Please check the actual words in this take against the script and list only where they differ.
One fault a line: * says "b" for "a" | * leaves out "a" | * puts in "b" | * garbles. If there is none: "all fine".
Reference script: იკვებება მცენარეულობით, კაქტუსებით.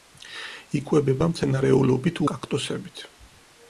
all fine